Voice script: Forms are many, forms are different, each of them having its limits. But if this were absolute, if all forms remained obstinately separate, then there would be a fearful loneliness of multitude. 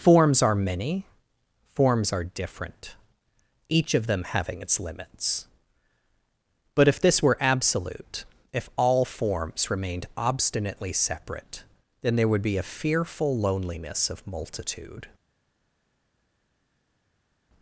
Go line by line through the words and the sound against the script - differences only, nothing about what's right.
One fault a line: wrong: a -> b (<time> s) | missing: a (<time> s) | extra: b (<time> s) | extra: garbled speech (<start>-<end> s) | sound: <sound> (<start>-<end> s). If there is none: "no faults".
no faults